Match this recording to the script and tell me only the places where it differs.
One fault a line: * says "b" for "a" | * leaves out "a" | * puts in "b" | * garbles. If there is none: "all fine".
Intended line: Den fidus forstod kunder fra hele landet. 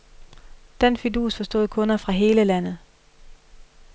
all fine